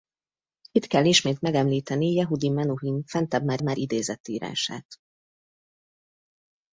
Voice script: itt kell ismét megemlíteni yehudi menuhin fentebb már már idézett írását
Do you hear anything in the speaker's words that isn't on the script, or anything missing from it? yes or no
no